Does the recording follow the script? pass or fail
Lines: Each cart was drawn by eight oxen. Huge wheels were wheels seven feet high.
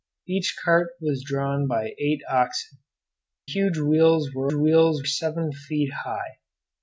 pass